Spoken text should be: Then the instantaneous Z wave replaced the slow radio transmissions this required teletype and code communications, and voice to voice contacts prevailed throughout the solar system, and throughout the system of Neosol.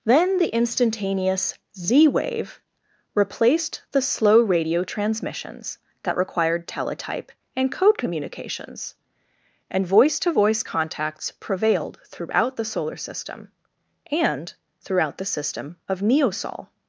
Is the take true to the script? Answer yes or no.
no